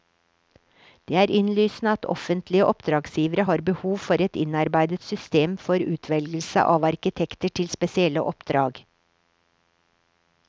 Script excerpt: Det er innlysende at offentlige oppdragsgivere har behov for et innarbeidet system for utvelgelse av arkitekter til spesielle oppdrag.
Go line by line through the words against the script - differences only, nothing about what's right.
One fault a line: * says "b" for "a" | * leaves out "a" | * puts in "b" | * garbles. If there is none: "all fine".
all fine